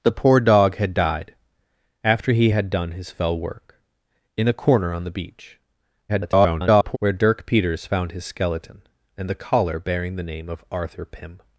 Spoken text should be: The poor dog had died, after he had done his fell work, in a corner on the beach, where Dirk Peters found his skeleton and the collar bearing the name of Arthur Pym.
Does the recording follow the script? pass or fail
fail